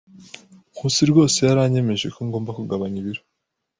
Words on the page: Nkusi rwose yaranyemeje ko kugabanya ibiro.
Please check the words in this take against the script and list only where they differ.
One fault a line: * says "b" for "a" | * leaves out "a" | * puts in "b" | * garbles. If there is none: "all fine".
* puts in "ngomba"